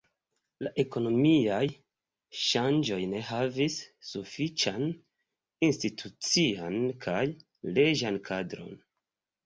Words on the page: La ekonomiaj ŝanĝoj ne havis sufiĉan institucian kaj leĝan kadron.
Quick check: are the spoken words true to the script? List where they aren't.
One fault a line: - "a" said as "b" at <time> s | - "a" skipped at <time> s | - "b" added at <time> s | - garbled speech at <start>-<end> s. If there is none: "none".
none